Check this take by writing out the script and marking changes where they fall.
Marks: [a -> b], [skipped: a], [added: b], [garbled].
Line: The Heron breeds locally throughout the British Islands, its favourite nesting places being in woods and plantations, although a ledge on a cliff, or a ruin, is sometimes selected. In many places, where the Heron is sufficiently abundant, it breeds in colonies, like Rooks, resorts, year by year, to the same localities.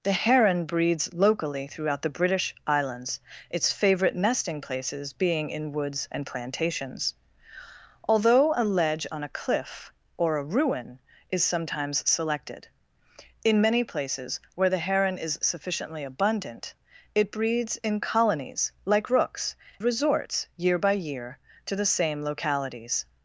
The Heron breeds locally throughout the British Islands, its favourite nesting places being in woods and plantations, although a ledge on a cliff, or a ruin, is sometimes selected. In many places, where the Heron is sufficiently abundant, it breeds in colonies, like Rooks, resorts, year by year, to the same localities.